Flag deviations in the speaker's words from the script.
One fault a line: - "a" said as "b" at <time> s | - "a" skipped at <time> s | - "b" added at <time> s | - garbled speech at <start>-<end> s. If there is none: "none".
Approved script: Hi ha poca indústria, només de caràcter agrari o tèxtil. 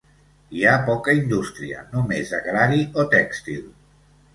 - "caràcter" skipped at 2.4 s